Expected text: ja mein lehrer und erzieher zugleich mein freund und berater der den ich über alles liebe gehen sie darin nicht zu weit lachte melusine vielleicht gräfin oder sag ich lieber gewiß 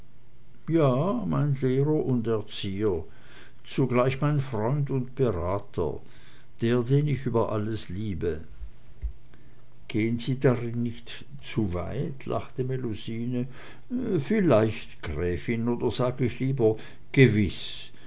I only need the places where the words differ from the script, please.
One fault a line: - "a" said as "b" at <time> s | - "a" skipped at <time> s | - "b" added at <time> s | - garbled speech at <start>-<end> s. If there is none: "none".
none